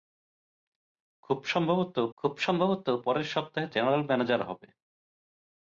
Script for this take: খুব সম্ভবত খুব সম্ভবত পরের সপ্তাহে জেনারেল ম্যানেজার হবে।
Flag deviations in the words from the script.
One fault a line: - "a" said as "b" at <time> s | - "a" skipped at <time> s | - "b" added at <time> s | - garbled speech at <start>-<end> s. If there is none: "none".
none